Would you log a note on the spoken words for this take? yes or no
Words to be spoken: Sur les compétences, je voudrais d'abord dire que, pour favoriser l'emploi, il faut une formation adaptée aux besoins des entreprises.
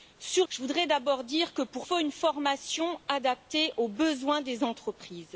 yes